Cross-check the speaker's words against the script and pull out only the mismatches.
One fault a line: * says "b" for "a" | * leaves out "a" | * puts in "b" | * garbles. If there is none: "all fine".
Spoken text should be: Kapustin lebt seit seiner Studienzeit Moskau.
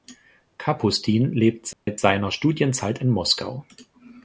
* puts in "in"